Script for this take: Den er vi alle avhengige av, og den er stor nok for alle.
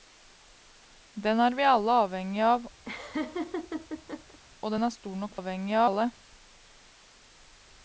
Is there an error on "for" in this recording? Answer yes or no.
yes